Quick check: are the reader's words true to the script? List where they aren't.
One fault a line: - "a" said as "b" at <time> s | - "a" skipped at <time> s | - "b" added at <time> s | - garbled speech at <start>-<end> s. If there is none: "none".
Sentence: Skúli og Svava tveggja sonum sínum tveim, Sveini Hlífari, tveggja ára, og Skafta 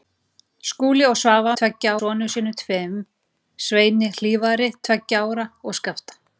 none